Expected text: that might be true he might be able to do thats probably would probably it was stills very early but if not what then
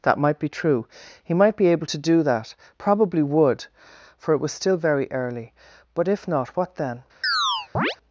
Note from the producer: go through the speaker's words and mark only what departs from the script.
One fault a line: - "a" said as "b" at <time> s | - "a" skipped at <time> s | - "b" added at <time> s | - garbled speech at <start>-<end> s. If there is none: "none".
- "thats" said as "that" at 2.2 s
- "probably" said as "for" at 4.2 s
- "stills" said as "still" at 4.5 s